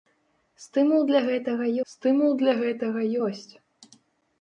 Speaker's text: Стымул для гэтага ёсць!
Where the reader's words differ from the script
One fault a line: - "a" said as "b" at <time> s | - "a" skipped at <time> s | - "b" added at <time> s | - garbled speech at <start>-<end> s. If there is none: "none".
- "стымул для гэтага" added at 1.9 s